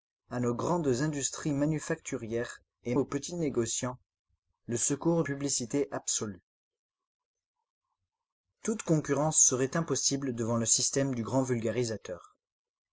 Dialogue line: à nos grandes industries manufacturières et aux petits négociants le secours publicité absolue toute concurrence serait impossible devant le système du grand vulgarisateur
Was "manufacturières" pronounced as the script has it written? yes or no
yes